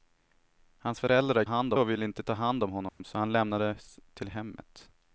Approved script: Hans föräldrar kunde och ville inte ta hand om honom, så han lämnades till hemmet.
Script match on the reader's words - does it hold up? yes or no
no